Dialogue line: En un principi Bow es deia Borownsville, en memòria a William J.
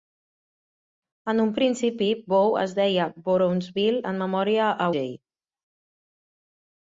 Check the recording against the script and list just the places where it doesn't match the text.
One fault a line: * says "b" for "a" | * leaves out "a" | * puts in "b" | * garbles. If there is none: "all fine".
* leaves out "William"